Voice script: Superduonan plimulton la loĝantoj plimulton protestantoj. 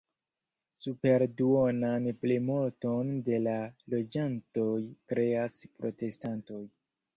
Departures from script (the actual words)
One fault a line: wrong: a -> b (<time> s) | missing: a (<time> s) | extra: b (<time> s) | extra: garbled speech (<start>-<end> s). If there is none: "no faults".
extra: de (3.3 s)
wrong: plimulton -> kreas (5.1 s)